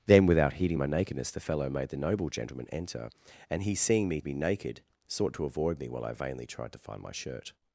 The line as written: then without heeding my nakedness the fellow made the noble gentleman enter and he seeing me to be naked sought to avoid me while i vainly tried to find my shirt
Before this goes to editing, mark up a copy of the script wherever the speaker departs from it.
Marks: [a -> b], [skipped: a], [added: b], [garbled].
then without heeding my nakedness the fellow made the noble gentleman enter and he seeing me [skipped: to] be naked sought to avoid me while i vainly tried to find my shirt